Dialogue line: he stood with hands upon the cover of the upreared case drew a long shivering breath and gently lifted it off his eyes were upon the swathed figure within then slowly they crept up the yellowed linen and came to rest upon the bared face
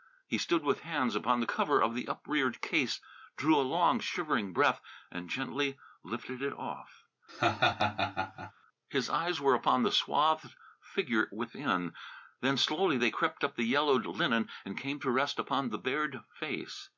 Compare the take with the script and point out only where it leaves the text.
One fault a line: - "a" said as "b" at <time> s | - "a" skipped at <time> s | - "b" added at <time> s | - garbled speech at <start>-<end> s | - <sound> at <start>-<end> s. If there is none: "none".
- laugh at 7.3-8.5 s